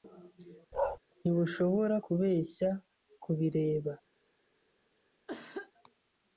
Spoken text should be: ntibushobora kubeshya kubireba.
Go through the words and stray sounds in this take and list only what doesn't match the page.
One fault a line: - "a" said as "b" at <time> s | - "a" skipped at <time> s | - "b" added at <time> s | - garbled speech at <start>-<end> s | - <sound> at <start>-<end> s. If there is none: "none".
- bark at 0.7-1.0 s
- cough at 5.3-5.7 s